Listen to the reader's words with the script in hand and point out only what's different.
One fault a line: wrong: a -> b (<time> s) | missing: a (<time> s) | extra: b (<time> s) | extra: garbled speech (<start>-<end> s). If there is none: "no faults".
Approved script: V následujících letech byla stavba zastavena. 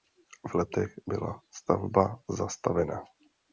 missing: následujících (0.6 s)